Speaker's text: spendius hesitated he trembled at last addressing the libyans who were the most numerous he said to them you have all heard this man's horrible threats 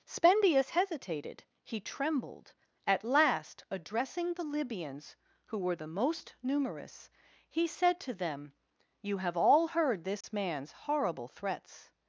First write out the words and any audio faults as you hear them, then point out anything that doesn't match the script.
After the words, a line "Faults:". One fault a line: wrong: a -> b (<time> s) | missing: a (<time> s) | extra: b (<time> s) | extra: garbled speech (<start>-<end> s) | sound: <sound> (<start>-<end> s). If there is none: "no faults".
spendius hesitated he trembled at last addressing the libyans who were the most numerous he said to them you have all heard this man's horrible threats
Faults:
sound: dropout (10.2-10.2 s)